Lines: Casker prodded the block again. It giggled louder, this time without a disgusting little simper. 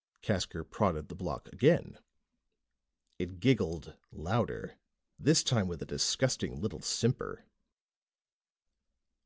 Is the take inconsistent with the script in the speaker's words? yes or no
yes